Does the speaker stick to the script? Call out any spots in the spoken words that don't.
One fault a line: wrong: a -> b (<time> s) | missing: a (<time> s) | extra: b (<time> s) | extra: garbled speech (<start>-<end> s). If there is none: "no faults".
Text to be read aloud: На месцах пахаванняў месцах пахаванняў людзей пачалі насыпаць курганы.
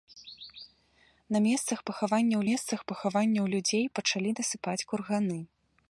no faults